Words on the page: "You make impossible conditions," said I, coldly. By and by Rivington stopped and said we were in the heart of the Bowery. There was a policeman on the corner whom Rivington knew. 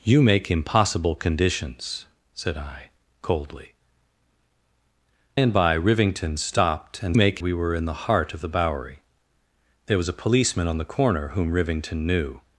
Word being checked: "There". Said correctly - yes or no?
yes